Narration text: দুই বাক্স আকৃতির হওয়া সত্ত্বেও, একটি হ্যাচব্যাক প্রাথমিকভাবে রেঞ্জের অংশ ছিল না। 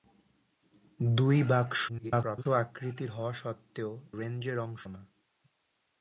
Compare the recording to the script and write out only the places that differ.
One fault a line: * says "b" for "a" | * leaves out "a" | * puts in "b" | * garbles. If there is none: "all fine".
* garbles
* leaves out "একটি হ্যাচব্যাক প্রাথমিকভাবে"
* leaves out "ছিল"